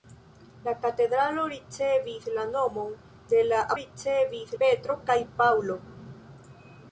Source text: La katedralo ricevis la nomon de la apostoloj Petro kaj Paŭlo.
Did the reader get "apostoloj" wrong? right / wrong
wrong